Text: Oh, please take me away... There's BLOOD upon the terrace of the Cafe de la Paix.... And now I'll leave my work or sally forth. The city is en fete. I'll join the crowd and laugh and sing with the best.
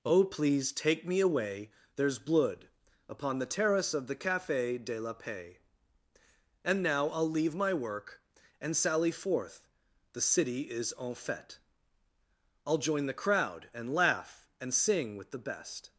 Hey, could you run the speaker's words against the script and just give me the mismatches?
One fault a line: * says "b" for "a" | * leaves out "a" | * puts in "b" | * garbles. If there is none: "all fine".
* says "and" for "or"